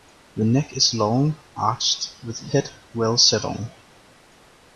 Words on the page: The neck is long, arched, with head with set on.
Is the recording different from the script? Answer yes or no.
yes